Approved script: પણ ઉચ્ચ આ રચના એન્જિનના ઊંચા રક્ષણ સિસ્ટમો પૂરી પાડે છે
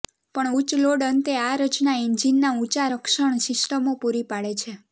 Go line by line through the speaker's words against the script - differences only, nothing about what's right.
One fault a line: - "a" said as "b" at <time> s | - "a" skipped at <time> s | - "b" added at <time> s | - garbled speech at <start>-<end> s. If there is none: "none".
- "લોડ અંતે" added at 0.8 s